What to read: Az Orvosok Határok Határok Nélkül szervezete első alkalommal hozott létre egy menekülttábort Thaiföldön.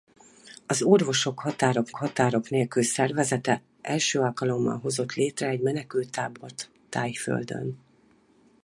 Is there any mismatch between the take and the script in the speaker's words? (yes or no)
no